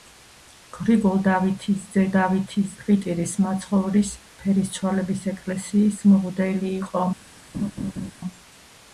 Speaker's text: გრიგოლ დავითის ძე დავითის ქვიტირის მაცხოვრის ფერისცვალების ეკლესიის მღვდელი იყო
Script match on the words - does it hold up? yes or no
yes